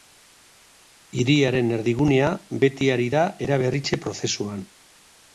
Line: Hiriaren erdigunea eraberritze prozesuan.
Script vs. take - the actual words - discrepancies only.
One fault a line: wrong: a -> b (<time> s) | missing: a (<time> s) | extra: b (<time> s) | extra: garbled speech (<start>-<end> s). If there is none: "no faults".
extra: beti ari da (2.6 s)